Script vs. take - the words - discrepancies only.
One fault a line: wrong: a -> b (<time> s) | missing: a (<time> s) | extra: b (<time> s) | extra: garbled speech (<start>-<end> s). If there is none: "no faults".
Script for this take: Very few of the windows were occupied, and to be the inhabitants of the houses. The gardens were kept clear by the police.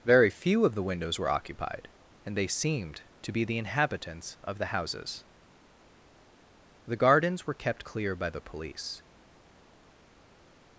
extra: they seemed (2.4 s)